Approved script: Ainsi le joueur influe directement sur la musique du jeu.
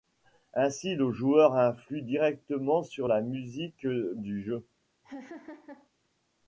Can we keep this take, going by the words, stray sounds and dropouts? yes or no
no